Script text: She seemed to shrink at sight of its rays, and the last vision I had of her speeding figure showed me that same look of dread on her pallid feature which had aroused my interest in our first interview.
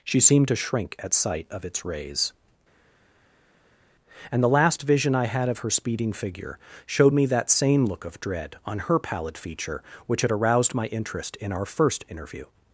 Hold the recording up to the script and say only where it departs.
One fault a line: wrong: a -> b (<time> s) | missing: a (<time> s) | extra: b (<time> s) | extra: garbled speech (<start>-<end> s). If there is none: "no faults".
no faults